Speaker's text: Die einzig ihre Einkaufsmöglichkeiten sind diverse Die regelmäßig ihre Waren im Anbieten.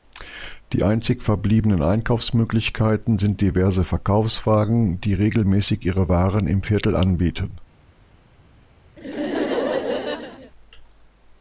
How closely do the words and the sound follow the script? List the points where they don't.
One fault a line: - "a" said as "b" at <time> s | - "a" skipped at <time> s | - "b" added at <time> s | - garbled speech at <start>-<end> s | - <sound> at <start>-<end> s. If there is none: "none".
- "ihre" said as "verbliebenen" at 1.2 s
- "Verkaufswagen" added at 3.8 s
- "Viertel" added at 6.6 s
- laugh at 9.0-10.5 s